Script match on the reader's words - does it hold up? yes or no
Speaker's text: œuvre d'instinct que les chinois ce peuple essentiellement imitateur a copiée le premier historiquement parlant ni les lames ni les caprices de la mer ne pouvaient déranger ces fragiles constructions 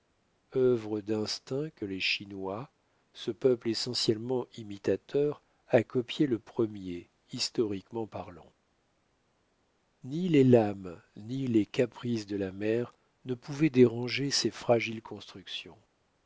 yes